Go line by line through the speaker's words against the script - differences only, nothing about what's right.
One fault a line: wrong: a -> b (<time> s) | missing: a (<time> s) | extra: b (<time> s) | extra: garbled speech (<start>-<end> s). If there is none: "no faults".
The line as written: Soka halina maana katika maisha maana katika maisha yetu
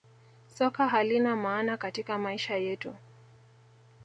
missing: maana katika maisha (2.5 s)